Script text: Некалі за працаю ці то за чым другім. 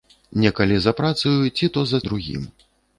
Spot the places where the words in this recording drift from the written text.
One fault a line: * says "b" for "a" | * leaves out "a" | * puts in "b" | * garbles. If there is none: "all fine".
* leaves out "чым"